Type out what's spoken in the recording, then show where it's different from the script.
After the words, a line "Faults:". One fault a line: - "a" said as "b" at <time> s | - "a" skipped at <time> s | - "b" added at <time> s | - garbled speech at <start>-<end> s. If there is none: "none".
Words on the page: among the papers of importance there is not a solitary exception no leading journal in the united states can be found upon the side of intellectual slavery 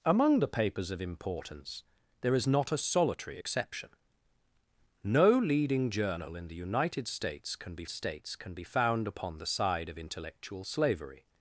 among the papers of importance there is not a solitary exception no leading journal in the united states can be states can be found upon the side of intellectual slavery
Faults:
- "states can be" added at 7.9 s